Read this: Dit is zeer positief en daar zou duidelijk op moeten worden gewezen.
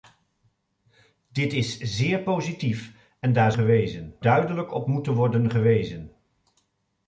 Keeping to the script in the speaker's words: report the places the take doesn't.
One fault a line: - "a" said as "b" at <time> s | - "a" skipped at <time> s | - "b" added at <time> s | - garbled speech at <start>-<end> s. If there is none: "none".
- "zou" said as "gewezen" at 3.5 s